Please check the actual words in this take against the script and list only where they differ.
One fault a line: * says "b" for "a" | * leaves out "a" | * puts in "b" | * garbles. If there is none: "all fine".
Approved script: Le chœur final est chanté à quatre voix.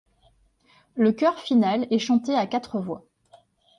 all fine